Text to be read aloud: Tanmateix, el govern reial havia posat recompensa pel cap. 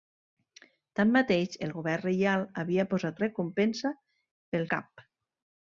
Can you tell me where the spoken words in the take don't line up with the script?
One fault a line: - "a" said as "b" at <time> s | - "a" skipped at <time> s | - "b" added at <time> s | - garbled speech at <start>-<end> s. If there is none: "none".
none